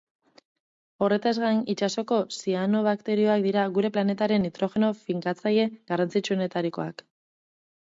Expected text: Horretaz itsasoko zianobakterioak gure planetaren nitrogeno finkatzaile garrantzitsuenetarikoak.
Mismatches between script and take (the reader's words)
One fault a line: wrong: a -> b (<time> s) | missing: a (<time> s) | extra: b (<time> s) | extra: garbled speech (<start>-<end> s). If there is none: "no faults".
extra: gain (1.4 s)
extra: dira (3.5 s)